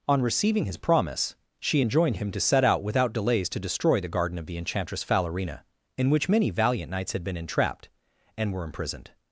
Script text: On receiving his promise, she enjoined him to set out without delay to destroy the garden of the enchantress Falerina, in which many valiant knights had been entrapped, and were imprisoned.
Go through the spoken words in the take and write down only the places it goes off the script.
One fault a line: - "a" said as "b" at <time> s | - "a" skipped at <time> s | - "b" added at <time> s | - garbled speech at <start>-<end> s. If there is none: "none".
- "delay" said as "delays" at 3.1 s